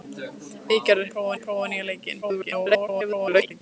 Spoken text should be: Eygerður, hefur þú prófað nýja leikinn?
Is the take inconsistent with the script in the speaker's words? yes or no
yes